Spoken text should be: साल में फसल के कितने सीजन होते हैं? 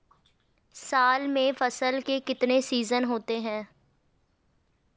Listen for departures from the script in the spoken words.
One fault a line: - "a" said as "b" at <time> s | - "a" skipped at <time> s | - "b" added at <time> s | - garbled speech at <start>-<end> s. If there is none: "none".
none